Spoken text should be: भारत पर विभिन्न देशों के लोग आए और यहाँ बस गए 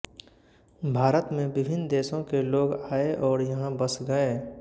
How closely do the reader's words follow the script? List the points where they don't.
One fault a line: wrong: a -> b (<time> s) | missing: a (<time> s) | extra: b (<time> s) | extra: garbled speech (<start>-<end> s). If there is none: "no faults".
wrong: पर -> में (1.3 s)